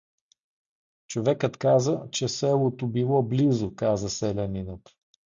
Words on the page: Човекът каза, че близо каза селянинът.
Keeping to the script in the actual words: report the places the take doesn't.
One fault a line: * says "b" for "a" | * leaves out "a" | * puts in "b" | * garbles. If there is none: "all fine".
* puts in "селото било"